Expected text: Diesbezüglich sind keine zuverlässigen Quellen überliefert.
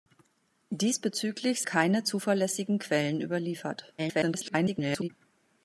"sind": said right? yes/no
no